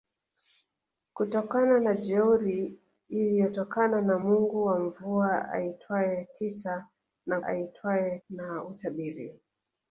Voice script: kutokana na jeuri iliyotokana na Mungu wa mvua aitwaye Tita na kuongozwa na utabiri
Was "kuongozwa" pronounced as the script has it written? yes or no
no